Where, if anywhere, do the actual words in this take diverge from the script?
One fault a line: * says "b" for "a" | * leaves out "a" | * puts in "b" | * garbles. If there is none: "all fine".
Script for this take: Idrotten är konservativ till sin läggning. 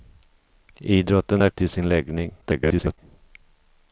* leaves out "konservativ"
* garbles